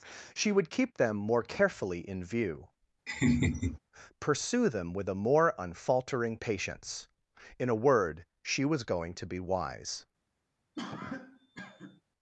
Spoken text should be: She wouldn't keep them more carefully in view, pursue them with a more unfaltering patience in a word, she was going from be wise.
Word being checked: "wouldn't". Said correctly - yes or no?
no